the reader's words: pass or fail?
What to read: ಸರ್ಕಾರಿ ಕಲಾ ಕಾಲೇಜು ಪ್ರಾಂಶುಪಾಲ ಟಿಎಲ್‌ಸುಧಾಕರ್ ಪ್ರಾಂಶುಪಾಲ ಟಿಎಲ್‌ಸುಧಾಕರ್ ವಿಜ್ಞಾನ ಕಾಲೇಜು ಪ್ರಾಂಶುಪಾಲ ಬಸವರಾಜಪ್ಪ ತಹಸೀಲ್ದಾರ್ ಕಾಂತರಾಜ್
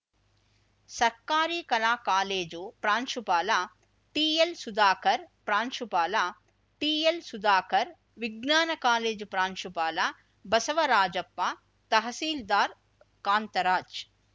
pass